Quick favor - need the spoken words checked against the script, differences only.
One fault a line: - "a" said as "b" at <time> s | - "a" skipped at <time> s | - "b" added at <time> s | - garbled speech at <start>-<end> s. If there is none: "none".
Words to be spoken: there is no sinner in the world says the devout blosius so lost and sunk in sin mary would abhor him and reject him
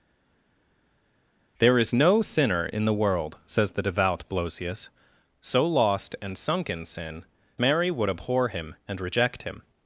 none